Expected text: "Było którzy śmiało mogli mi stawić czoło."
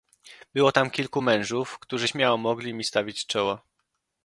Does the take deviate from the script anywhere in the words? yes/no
yes